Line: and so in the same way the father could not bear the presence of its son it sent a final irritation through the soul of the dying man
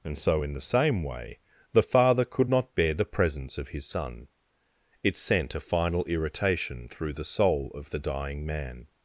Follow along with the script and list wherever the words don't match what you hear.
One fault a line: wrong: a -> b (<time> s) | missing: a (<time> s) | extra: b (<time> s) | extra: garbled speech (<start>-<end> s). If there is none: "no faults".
wrong: its -> his (3.7 s)